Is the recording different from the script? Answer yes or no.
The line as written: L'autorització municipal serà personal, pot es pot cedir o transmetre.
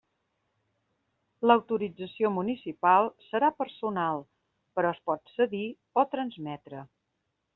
yes